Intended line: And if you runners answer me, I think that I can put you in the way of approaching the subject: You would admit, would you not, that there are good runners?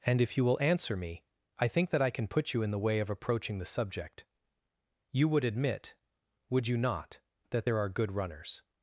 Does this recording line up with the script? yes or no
no